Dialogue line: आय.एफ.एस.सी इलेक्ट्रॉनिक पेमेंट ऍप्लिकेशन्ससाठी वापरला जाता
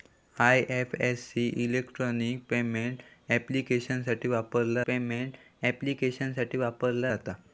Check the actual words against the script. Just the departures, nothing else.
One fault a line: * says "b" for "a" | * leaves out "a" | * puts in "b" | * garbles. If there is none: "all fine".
* puts in "पेमेंट ऍप्लिकेशन्ससाठी वापरला"